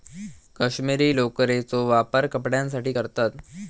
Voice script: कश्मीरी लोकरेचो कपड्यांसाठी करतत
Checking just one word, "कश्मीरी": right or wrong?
right